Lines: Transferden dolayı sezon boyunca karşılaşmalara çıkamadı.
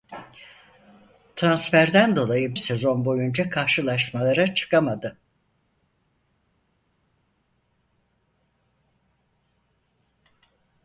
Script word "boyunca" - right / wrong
right